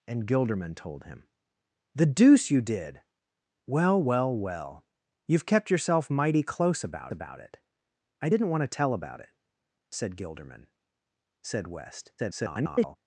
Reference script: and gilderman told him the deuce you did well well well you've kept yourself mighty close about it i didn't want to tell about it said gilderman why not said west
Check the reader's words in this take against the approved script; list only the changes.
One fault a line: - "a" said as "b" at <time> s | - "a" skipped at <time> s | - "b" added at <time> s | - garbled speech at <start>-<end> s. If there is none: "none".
- "about" added at 7.1 s
- "why not" skipped at 10.7 s
- garbled speech at 12.2-13.0 s